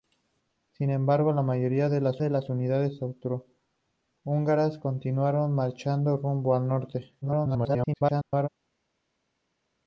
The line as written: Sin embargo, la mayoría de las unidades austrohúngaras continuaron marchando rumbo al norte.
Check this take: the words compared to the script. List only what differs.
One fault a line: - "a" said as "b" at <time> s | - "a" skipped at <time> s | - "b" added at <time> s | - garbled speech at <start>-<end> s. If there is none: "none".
- "de las" added at 2.2 s
- garbled speech at 7.2-8.5 s